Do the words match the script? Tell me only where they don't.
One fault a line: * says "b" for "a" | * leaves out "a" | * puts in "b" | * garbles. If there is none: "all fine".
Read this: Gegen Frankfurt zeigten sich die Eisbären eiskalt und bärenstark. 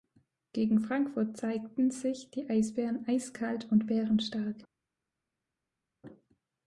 all fine